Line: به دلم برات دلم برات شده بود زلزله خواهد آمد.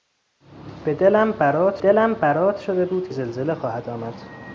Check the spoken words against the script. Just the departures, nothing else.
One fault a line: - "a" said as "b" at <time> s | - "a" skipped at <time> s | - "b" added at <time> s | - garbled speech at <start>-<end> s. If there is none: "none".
none